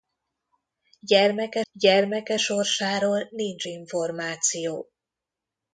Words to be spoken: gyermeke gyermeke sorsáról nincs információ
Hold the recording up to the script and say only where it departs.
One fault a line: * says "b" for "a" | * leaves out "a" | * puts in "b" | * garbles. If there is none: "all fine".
all fine